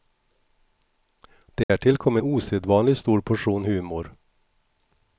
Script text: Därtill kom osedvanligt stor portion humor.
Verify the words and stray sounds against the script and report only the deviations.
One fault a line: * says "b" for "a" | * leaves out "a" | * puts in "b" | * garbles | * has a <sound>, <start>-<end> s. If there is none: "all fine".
* has a dropout, 1.6-1.7 s